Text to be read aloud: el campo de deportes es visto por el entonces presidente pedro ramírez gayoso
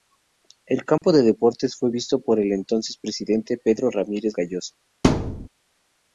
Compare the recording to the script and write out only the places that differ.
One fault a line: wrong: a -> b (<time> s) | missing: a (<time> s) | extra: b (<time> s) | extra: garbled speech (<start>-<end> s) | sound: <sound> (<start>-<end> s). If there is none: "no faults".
sound: dropout (1.0-1.0 s)
wrong: es -> fue (1.8 s)
sound: thud (5.0-5.5 s)